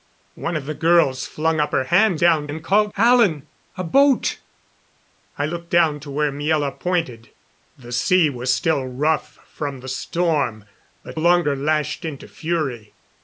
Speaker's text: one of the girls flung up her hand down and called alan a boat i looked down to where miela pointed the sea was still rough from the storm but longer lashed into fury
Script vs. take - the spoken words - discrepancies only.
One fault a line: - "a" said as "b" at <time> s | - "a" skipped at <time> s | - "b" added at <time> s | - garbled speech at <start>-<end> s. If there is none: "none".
none